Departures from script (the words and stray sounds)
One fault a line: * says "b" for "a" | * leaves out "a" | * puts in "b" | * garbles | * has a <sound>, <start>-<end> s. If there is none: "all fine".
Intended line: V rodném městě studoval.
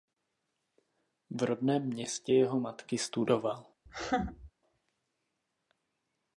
* puts in "jeho matky"
* has a laugh, 3.9-4.5 s